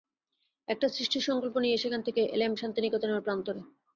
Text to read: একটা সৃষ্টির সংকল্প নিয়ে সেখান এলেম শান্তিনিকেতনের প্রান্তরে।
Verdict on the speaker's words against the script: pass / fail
fail